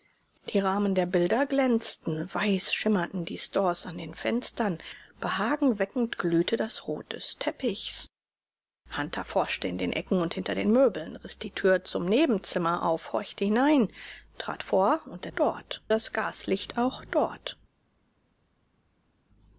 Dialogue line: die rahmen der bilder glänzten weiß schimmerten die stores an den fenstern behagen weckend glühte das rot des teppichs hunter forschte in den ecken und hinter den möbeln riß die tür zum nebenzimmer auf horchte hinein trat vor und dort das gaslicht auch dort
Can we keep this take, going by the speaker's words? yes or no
yes